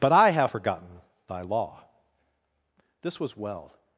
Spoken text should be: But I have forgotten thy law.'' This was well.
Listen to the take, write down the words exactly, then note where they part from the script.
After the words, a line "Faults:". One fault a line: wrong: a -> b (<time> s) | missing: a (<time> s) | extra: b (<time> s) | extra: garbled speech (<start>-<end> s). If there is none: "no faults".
But I have forgotten thy law.'' This was well.
Faults:
no faults